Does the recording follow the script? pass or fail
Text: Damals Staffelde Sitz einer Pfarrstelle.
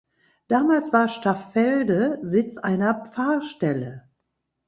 fail